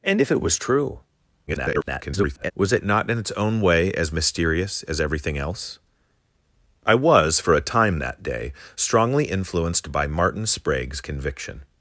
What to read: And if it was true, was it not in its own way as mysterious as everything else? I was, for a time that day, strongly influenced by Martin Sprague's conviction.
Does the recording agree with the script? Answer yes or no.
no